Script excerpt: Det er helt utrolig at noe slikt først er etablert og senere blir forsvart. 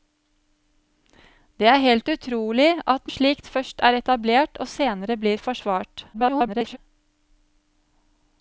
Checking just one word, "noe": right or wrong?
wrong